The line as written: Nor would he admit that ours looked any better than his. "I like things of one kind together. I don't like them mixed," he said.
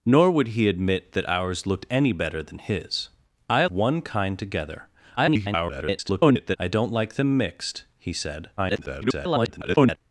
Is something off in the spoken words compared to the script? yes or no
yes